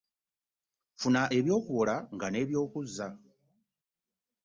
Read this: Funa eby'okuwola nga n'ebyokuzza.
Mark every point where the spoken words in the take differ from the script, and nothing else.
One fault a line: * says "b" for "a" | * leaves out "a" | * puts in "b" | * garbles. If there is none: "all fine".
all fine